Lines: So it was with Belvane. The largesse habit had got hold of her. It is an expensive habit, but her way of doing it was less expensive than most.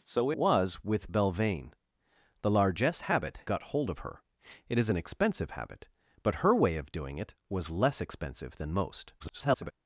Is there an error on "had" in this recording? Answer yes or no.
yes